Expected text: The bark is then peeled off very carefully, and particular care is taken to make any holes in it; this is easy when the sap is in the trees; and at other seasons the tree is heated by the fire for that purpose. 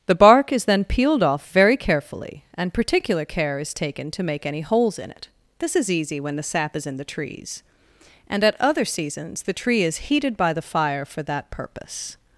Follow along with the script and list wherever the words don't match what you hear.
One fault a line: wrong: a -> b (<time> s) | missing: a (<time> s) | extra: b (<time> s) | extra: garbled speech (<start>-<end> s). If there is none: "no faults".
no faults